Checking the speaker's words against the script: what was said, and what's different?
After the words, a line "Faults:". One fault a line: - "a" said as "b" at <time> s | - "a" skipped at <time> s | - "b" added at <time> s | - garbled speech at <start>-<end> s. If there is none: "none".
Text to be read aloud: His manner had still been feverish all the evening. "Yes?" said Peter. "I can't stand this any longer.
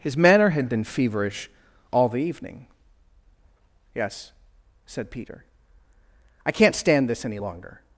His manner had been feverish all the evening. "Yes?" said Peter. "I can't stand this any longer.
Faults:
- "still" skipped at 0.7 s